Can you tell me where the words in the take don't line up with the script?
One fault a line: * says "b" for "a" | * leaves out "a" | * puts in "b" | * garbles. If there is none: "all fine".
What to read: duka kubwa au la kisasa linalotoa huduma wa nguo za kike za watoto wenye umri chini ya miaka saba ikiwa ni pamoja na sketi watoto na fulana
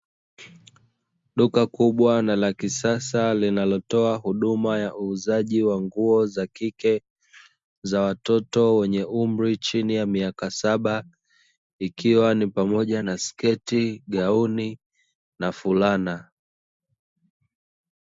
* says "na" for "au"
* puts in "ya uuzaji"
* says "gauni" for "watoto"